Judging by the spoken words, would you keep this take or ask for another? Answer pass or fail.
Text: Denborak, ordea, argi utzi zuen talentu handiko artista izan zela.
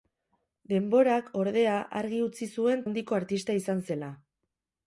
fail